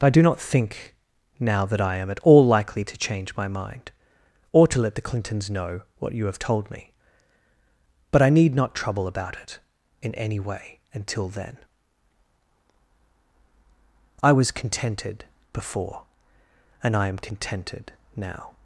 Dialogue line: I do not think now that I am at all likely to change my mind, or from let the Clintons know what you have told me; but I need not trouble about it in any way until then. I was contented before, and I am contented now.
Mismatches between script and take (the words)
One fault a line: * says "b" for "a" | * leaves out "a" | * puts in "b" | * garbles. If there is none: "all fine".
* says "to" for "from"